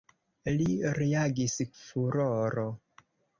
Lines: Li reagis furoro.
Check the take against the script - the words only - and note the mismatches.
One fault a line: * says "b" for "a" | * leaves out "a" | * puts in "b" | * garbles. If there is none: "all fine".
all fine